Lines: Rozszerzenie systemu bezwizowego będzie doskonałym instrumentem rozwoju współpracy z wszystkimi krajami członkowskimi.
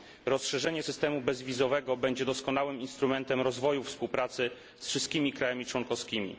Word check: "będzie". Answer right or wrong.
right